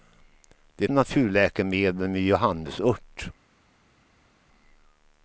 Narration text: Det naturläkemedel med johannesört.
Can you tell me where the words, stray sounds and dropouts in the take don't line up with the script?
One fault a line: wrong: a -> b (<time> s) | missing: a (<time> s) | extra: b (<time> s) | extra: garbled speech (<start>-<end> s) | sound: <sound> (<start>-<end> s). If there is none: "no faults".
no faults